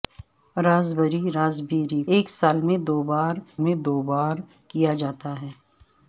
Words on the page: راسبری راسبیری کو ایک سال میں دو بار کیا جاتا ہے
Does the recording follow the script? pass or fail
fail